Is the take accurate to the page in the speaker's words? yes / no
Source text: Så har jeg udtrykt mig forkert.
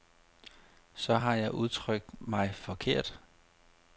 yes